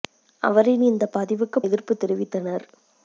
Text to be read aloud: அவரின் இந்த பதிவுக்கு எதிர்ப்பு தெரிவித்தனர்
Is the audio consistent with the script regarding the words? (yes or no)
yes